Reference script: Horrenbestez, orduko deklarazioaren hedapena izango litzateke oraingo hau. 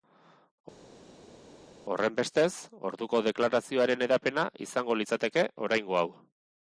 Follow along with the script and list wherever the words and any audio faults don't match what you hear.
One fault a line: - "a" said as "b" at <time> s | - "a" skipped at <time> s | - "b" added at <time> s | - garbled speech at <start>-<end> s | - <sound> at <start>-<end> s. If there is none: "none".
none